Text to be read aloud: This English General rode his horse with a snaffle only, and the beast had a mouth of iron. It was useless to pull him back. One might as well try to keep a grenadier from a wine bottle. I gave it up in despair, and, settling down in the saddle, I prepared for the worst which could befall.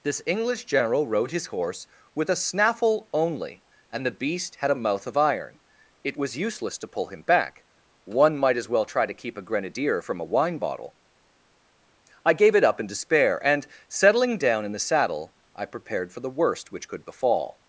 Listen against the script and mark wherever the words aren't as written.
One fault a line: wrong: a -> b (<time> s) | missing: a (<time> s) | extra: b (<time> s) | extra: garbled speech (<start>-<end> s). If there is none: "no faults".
no faults